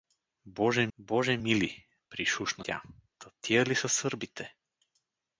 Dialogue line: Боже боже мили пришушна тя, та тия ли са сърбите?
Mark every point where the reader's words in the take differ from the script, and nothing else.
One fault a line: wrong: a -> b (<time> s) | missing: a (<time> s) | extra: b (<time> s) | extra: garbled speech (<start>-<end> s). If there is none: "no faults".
no faults